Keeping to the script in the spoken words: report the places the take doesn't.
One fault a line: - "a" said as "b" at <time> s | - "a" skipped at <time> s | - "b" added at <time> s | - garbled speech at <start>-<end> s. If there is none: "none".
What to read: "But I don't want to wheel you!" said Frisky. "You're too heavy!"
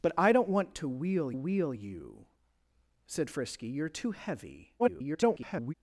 - "wheel" added at 1.3 s
- garbled speech at 4.8-5.7 s